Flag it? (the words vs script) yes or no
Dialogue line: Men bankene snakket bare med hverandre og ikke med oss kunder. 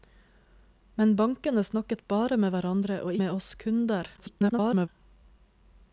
yes